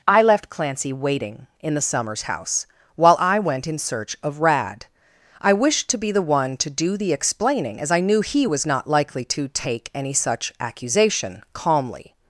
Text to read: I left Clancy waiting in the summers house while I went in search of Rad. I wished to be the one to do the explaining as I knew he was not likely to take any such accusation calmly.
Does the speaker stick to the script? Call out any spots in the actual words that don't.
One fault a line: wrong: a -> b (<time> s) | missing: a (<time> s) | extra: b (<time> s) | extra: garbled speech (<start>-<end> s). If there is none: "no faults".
no faults